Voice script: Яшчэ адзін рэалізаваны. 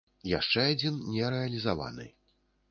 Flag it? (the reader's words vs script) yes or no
yes